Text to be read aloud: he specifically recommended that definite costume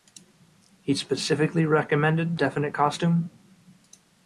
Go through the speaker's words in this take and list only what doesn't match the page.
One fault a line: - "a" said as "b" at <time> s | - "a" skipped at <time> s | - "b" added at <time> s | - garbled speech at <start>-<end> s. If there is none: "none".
- "that" skipped at 2.4 s